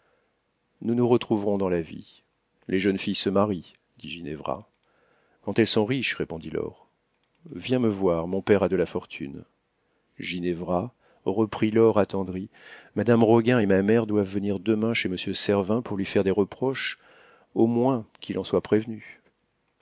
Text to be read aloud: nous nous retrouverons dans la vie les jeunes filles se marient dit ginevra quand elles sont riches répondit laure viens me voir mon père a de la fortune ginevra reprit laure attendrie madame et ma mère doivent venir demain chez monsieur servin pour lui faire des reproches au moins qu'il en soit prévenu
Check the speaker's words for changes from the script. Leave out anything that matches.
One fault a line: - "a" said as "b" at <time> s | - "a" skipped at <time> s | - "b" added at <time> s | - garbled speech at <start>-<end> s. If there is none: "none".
- "roguin" added at 13.2 s